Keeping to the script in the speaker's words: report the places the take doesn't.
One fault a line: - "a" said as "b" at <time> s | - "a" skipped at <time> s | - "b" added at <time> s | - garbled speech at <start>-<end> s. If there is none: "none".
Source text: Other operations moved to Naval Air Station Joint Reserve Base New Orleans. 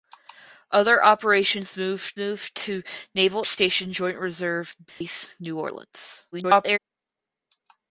- "moved" added at 2.2 s
- "Air" skipped at 3.5 s
- garbled speech at 6.3-6.8 s